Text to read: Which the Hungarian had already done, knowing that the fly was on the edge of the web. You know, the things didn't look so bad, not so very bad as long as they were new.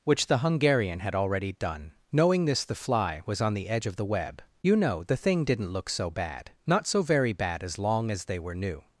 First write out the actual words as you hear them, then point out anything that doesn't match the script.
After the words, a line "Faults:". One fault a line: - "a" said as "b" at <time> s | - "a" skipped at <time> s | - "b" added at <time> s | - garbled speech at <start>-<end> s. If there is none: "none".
Which the Hungarian had already done, knowing this the fly was on the edge of the web. You know, the thing didn't look so bad, not so very bad as long as they were new.
Faults:
- "that" said as "this" at 2.5 s
- "things" said as "thing" at 5.2 s